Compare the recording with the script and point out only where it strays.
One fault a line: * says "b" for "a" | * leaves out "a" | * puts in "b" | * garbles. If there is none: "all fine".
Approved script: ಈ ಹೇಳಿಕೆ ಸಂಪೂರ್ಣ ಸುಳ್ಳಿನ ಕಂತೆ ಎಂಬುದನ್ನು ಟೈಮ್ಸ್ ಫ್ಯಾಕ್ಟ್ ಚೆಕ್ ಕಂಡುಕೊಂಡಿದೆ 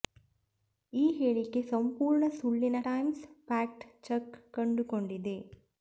* leaves out "ಕಂತೆ ಎಂಬುದನ್ನು"